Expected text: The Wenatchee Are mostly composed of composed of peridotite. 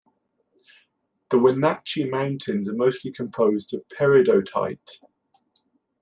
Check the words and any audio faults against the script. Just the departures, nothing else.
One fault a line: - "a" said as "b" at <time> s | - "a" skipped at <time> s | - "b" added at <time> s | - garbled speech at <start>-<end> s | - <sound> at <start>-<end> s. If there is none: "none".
- "Mountains" added at 2.1 s
- "composed of" skipped at 3.9 s